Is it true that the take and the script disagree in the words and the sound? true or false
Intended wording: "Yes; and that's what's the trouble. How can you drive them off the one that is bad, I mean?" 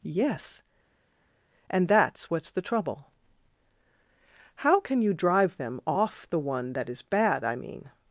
false